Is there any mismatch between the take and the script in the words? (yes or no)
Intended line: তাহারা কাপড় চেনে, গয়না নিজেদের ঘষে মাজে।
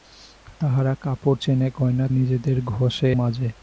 no